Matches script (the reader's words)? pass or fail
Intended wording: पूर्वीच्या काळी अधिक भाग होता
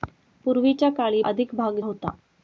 pass